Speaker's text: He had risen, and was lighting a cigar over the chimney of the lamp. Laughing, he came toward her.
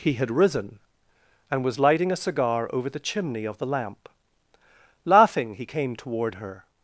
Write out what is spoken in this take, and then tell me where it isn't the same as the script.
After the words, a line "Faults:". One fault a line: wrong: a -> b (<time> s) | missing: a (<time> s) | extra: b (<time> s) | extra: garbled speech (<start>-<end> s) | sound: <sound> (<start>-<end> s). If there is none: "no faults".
He had risen, and was lighting a cigar over the chimney of the lamp. Laughing, he came toward her.
Faults:
no faults